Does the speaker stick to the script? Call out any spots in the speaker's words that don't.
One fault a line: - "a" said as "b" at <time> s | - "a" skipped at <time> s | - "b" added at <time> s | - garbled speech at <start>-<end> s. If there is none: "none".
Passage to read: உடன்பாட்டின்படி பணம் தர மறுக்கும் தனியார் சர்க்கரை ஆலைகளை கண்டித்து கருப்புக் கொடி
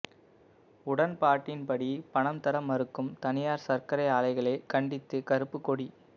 none